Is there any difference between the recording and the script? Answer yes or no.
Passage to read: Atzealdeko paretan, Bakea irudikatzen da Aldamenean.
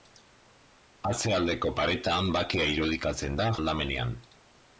no